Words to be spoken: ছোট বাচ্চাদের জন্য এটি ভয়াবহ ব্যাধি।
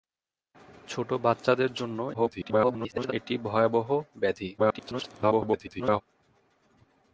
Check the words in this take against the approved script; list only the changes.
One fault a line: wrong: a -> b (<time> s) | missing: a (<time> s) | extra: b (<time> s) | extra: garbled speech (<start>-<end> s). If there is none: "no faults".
extra: garbled speech (2.1-3.1 s)
extra: garbled speech (4.6-6.0 s)